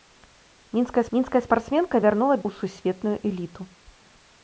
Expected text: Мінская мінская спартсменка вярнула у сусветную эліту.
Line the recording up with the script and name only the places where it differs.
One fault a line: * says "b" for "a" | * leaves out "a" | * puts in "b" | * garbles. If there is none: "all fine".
all fine